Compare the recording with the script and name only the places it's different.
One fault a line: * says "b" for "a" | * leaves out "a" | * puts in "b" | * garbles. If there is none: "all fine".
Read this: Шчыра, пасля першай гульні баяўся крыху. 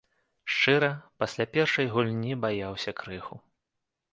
all fine